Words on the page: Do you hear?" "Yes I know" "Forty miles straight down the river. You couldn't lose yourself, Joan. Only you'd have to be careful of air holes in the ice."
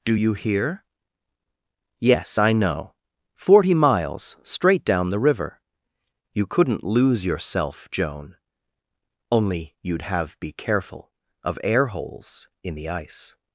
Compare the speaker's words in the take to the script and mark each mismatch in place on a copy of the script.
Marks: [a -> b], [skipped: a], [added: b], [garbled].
Do you hear?" "Yes I know" "Forty miles straight down the river. You couldn't lose yourself, Joan. Only you'd have [skipped: to] be careful of air holes in the ice."